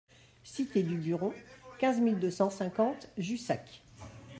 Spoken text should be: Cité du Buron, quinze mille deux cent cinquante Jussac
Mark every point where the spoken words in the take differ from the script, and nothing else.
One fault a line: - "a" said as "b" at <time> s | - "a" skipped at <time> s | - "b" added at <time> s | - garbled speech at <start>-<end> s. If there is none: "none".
none